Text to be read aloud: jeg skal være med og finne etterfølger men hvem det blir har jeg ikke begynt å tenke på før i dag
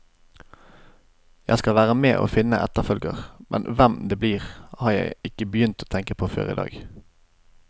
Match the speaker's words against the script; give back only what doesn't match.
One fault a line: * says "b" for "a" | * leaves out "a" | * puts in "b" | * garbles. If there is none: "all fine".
all fine